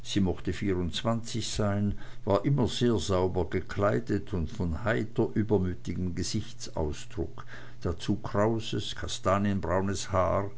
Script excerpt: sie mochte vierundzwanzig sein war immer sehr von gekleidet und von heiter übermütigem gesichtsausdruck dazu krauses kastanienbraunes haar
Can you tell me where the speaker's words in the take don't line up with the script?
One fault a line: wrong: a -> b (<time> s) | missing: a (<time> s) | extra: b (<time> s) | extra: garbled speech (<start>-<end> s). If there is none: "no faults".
wrong: von -> sauber (3.0 s)